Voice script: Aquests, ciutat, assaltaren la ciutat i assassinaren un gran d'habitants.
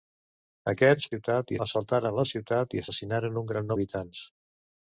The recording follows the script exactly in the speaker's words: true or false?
true